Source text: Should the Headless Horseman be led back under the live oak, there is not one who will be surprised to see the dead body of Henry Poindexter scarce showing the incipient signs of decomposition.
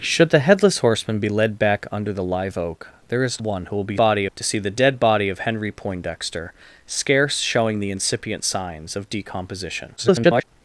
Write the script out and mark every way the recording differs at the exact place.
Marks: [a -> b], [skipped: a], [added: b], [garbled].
Should the Headless Horseman be led back under the live oak, there is [skipped: not] one who will be [surprised -> body] to see the dead body of Henry Poindexter scarce showing the incipient signs of decomposition. [garbled]